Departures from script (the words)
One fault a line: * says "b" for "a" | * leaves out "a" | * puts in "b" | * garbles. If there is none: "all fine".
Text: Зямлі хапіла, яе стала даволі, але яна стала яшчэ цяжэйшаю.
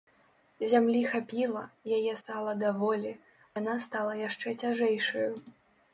* leaves out "але"